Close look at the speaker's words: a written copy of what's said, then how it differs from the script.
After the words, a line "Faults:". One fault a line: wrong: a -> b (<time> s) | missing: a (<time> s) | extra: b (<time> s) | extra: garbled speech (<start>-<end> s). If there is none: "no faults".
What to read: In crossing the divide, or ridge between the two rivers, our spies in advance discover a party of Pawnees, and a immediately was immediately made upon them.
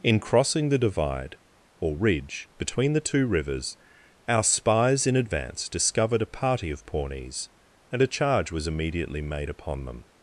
In crossing the divide, or ridge between the two rivers, our spies in advance discovered a party of Pawnees, and a charge was immediately made upon them.
Faults:
wrong: discover -> discovered (5.7 s)
wrong: immediately -> charge (8.1 s)